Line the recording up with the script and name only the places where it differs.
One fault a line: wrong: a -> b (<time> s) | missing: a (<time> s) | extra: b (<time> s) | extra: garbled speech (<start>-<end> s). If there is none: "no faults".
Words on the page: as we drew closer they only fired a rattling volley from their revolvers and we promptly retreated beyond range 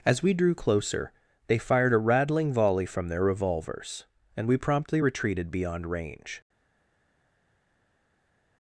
missing: only (1.6 s)